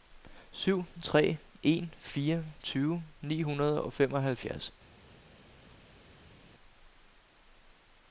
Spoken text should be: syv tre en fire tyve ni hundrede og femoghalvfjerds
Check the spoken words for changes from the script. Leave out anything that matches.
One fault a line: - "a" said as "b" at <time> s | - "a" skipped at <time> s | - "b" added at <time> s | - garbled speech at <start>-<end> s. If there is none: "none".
none